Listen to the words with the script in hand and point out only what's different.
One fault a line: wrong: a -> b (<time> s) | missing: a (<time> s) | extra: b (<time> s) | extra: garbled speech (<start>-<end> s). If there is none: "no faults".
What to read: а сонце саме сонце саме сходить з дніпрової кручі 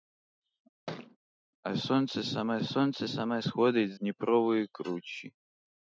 no faults